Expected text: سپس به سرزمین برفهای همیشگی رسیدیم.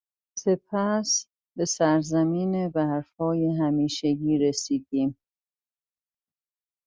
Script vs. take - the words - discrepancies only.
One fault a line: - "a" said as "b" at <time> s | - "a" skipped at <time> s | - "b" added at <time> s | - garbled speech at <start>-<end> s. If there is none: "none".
none